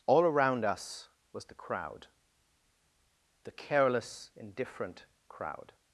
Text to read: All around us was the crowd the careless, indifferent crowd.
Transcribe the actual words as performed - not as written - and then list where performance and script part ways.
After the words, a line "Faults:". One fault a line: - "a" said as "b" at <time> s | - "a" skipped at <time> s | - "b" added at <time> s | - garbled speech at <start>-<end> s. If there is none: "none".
All around us was the crowd the careless, indifferent crowd.
Faults:
none